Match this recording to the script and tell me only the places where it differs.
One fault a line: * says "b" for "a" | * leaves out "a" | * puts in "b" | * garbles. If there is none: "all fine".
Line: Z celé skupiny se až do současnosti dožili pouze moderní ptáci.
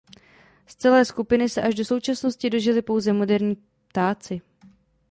all fine